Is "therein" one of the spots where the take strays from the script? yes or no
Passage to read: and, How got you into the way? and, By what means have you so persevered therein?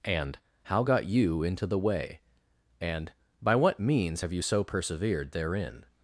no